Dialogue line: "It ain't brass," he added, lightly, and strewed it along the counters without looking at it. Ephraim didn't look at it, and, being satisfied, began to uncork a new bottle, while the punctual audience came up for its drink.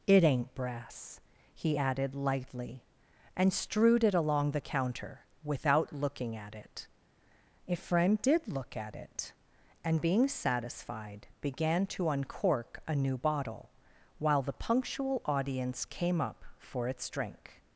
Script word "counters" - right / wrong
wrong